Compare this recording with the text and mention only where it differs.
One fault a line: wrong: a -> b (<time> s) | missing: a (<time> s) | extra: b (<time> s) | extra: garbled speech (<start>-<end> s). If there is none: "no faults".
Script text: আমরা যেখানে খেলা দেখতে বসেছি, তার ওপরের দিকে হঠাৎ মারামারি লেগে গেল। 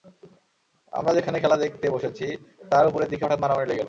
no faults